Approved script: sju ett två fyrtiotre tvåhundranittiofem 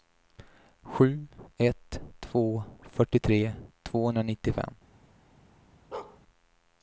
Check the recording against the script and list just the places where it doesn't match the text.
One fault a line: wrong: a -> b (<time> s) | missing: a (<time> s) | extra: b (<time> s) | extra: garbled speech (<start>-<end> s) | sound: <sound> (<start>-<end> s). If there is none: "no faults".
sound: bark (5.9-6.2 s)